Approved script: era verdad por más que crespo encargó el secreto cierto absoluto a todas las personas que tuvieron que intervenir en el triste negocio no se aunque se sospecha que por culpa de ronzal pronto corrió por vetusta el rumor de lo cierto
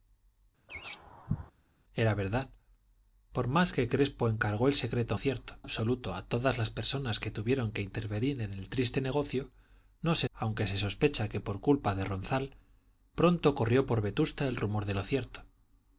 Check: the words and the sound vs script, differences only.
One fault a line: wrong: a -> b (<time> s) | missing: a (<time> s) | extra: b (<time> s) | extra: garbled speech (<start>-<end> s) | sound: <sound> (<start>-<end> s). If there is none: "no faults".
sound: laugh (0.7-1.5 s)